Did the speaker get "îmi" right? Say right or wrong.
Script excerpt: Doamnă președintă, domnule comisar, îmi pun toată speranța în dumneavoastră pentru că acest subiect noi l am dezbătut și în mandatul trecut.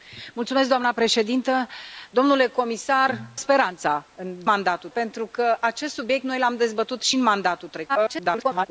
wrong